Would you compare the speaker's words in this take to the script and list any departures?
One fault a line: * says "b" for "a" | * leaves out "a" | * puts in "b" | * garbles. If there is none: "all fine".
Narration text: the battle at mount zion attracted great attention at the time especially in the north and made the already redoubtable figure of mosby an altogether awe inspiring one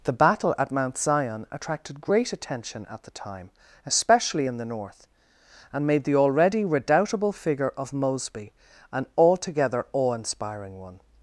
all fine